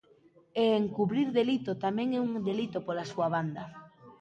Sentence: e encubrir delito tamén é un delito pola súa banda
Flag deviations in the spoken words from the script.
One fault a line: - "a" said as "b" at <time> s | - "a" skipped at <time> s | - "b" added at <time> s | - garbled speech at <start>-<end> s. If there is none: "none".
none